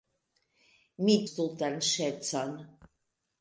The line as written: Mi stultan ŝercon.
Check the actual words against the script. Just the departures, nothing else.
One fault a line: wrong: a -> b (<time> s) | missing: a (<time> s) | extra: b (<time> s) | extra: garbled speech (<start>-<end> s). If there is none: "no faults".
no faults